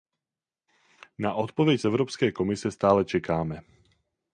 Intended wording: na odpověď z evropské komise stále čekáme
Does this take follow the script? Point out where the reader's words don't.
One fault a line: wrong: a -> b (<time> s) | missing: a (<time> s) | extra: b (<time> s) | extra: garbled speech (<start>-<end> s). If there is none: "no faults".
no faults